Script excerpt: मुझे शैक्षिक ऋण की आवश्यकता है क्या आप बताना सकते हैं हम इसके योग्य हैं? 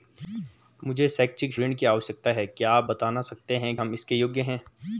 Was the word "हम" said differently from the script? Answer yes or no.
no